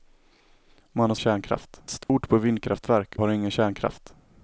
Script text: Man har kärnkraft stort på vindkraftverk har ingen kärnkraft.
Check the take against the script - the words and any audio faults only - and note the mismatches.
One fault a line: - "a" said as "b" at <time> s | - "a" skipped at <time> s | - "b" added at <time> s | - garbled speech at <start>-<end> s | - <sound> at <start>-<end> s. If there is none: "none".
- dropout at 2.0-2.1 s